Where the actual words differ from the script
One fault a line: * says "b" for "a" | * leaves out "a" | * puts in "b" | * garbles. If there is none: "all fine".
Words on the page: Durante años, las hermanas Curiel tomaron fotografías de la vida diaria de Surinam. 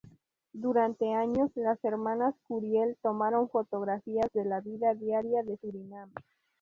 all fine